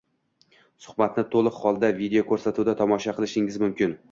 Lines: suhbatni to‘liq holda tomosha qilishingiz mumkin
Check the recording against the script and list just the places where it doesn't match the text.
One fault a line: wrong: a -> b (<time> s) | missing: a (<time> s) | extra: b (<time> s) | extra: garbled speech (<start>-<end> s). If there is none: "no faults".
extra: videoko‘rsatuvda (2.0 s)